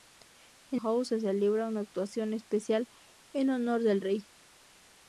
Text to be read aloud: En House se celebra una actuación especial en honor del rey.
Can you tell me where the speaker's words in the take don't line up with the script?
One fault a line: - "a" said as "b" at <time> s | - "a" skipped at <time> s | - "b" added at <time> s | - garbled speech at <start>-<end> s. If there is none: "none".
none